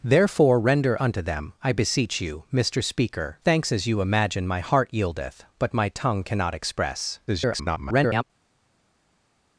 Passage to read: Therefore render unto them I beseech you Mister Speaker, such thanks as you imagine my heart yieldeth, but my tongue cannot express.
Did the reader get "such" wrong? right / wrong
wrong